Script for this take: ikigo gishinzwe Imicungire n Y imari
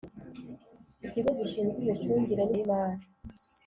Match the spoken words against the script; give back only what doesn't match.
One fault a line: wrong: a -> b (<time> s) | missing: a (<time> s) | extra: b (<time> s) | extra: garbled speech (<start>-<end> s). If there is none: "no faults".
no faults